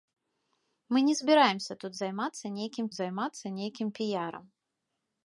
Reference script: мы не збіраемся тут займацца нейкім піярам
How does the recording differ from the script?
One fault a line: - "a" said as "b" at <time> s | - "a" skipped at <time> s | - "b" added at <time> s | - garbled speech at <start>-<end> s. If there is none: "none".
- "займацца нейкім" added at 3.0 s